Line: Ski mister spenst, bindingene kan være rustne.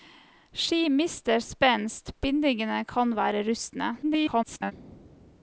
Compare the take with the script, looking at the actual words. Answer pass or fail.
fail